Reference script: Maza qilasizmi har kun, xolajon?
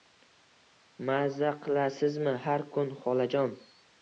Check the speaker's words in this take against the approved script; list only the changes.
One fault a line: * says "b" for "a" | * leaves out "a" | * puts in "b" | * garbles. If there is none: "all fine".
all fine